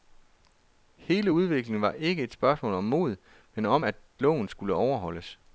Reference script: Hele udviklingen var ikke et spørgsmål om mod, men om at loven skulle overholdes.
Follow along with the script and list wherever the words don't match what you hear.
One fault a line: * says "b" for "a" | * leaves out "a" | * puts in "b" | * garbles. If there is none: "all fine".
all fine